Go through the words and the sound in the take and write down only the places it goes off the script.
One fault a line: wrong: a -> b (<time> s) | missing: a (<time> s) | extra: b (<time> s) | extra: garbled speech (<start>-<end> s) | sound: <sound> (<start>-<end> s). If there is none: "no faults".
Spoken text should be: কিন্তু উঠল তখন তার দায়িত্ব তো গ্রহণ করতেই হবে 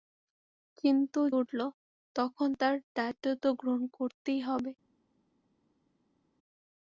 no faults